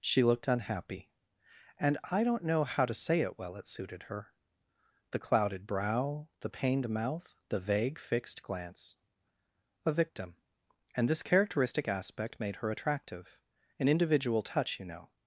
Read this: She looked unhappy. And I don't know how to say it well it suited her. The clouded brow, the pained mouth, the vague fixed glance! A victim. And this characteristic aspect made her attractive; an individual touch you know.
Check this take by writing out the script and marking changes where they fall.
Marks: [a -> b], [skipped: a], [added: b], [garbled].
She looked unhappy. And I don't know how to say it well it suited her. The clouded brow, the pained mouth, the vague fixed glance! A victim. And this characteristic aspect made her attractive; an individual touch you know.